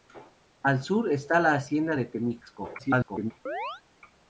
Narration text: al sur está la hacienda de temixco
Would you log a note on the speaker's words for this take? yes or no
yes